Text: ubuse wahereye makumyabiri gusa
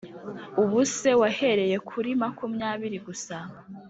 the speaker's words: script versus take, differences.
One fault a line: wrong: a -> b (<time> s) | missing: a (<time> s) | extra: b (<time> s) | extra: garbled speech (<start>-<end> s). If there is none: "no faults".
extra: kuri (1.9 s)